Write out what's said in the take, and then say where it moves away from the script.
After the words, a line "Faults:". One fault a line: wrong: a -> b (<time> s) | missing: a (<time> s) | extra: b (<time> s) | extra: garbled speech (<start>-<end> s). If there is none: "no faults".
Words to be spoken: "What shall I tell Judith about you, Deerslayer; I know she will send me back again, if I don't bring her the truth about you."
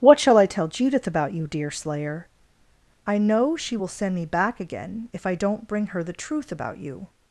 "What shall I tell Judith about you, Deerslayer; I know she will send me back again, if I don't bring her the truth about you."
Faults:
no faults